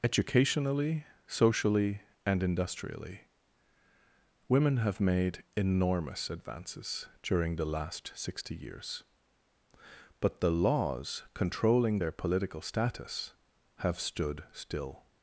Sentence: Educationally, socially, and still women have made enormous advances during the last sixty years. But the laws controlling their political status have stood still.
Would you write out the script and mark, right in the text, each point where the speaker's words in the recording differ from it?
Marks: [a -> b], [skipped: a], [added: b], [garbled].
Educationally, socially, and [still -> industrially] women have made enormous advances during the last sixty years. But the laws controlling their political status have stood still.